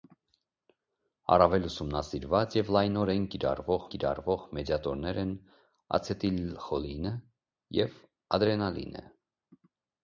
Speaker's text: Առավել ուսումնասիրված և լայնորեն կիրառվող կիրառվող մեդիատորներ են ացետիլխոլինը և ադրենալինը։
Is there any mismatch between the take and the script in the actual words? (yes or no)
no